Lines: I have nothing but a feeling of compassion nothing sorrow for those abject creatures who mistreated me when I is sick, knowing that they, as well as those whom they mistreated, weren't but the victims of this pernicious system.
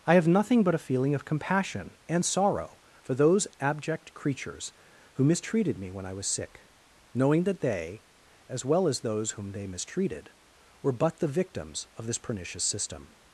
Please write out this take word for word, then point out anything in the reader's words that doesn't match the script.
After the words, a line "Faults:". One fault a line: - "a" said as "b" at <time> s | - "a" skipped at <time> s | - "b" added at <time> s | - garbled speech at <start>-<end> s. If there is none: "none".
I have nothing but a feeling of compassion and sorrow for those abject creatures who mistreated me when I was sick, knowing that they, as well as those whom they mistreated, were but the victims of this pernicious system.
Faults:
- "nothing" said as "and" at 2.1 s
- "is" said as "was" at 6.1 s
- "weren't" said as "were" at 10.8 s